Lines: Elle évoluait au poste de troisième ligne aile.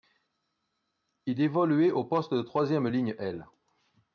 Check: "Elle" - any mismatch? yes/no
yes